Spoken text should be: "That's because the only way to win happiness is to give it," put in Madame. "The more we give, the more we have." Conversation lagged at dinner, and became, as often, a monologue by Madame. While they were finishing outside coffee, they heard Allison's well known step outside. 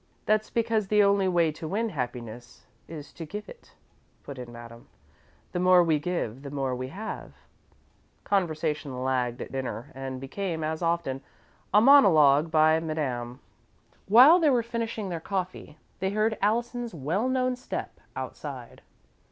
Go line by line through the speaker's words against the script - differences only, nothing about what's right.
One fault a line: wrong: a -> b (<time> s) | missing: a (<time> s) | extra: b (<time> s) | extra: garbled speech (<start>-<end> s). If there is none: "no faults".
wrong: outside -> their (15.1 s)